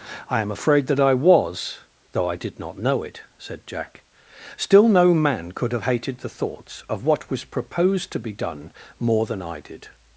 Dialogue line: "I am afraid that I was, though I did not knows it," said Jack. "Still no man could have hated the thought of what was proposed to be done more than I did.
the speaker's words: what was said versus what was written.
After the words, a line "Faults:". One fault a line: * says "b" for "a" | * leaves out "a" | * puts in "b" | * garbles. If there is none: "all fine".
"I am afraid that I was, though I did not know it," said Jack. "Still no man could have hated the thoughts of what was proposed to be done more than I did.
Faults:
* says "know" for "knows"
* says "thoughts" for "thought"